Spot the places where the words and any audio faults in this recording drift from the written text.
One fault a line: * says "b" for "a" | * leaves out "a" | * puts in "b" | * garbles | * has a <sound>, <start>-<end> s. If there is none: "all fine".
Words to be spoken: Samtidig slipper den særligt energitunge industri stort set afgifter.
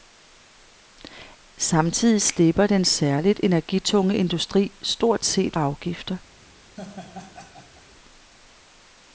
* has a laugh, 6.8-7.9 s